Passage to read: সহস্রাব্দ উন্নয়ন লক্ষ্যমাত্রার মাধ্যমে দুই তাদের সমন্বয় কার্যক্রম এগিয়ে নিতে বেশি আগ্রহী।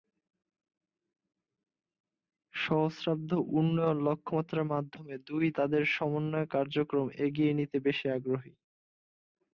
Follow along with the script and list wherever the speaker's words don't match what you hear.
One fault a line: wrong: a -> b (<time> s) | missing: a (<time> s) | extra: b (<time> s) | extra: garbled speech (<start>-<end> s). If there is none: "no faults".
no faults